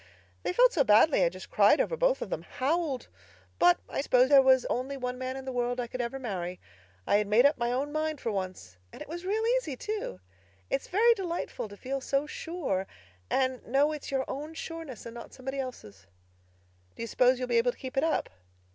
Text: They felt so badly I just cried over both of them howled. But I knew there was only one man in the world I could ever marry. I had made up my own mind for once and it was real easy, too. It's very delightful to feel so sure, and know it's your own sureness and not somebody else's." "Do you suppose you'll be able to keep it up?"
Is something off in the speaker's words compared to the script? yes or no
yes